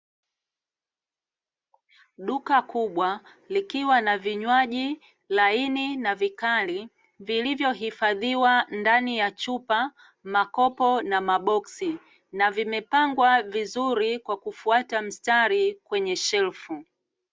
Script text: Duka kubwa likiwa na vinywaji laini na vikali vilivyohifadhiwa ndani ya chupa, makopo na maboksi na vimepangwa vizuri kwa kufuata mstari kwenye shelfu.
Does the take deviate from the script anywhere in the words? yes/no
no